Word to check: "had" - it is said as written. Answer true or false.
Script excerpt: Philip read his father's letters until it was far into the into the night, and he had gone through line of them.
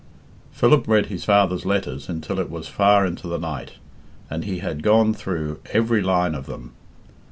true